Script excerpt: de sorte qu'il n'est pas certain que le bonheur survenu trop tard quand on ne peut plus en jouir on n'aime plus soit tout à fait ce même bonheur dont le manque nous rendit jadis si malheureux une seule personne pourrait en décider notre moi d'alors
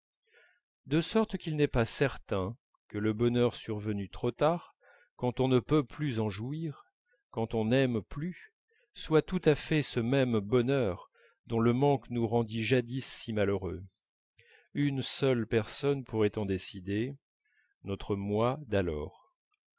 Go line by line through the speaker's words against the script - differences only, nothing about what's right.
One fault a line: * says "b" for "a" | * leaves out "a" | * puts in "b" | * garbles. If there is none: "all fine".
* puts in "quand"